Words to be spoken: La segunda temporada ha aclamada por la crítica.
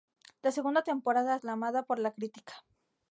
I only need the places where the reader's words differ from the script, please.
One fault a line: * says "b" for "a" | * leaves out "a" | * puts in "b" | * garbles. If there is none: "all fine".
all fine